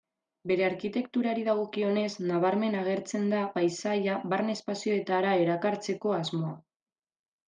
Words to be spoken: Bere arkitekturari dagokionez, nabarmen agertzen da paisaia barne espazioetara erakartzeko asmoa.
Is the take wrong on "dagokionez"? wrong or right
right